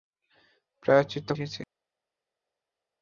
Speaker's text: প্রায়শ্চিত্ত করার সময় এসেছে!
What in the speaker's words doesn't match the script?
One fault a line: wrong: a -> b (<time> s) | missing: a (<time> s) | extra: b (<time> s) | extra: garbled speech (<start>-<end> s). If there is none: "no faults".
missing: করার সময় (1.3 s)